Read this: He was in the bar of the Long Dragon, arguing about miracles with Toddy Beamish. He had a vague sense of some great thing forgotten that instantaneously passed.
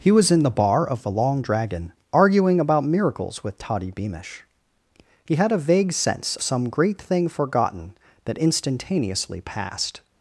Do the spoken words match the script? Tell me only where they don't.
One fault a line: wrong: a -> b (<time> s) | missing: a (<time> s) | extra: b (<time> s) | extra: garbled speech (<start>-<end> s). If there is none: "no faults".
missing: of (6.4 s)